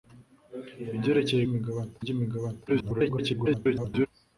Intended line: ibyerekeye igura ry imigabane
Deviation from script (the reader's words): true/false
true